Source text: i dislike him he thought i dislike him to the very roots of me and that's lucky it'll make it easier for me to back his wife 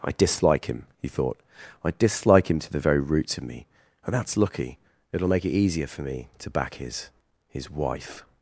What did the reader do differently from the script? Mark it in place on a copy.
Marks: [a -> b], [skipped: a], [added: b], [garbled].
i dislike him he thought i dislike him to the very roots of me and that's lucky it'll make it easier for me to back his [added: his] wife